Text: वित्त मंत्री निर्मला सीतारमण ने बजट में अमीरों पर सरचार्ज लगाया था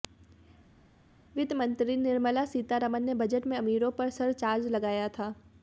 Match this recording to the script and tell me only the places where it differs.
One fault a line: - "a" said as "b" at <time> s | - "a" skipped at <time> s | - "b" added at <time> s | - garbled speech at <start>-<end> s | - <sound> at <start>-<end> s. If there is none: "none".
none